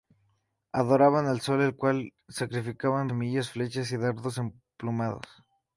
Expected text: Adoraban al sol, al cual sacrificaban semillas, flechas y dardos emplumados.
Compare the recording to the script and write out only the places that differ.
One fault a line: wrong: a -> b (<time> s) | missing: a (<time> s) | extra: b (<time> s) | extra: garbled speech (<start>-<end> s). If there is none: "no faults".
no faults